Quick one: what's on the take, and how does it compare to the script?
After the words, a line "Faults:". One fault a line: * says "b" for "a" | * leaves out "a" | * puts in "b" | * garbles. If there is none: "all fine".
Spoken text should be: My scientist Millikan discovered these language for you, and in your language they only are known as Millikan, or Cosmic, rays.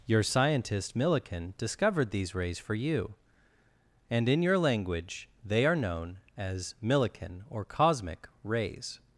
Your scientist Millikan discovered these rays for you, and in your language they are known as Millikan, or Cosmic, rays.
Faults:
* says "Your" for "My"
* says "rays" for "language"
* leaves out "only"